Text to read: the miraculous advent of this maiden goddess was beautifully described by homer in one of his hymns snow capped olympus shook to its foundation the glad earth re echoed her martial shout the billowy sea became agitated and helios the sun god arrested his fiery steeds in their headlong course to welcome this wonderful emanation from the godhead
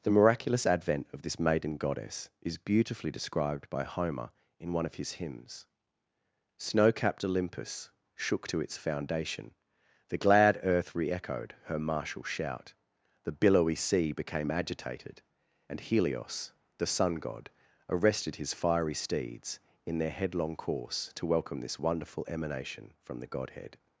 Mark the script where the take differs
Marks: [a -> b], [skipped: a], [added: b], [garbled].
the miraculous advent of this maiden goddess [was -> is] beautifully described by homer in one of his hymns snow capped olympus shook to its foundation the glad earth re echoed her martial shout the billowy sea became agitated and helios the sun god arrested his fiery steeds in their headlong course to welcome this wonderful emanation from the godhead